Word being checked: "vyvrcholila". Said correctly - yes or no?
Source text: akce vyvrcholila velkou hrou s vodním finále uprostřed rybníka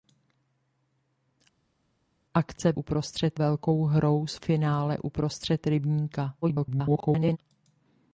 no